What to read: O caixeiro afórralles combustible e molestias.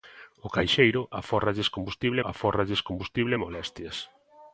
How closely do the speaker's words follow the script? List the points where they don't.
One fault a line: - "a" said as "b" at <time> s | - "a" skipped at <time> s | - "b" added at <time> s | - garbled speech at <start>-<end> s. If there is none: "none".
- "afórralles combustible" added at 2.3 s